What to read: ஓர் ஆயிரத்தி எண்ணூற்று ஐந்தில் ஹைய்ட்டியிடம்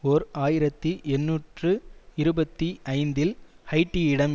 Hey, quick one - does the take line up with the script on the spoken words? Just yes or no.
no